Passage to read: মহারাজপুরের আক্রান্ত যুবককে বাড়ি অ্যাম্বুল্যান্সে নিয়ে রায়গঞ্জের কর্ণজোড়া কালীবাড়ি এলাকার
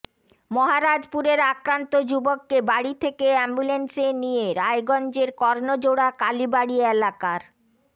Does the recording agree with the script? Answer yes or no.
no